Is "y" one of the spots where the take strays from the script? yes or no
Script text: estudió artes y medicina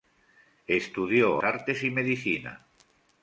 no